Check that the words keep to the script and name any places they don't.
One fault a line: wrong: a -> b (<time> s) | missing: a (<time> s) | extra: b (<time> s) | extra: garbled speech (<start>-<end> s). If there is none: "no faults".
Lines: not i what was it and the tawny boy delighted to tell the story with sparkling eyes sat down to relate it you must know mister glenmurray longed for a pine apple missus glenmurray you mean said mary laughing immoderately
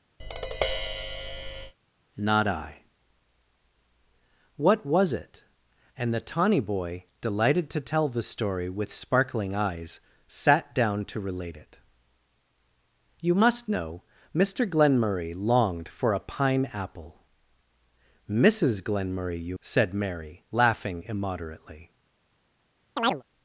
missing: mean (19.6 s)